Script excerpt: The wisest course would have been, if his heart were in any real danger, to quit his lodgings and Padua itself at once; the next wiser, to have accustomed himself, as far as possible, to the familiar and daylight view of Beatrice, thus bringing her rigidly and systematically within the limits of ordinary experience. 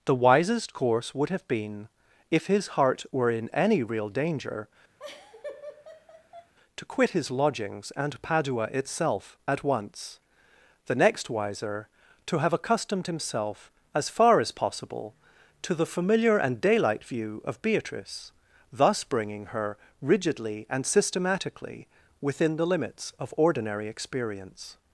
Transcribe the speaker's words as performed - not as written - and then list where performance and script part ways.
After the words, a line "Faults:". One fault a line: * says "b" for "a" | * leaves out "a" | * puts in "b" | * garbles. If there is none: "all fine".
The wisest course would have been, if his heart were in any real danger, to quit his lodgings and Padua itself at once; the next wiser, to have accustomed himself, as far as possible, to the familiar and daylight view of Beatrice, thus bringing her rigidly and systematically within the limits of ordinary experience.
Faults:
all fine